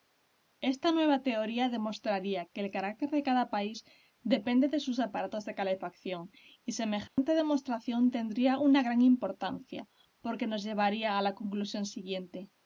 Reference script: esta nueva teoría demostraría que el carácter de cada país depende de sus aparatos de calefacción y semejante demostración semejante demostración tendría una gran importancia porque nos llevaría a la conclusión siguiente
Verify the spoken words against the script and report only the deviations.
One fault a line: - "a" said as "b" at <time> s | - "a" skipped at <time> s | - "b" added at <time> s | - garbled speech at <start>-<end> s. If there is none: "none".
- "semejante demostración" skipped at 8.1 s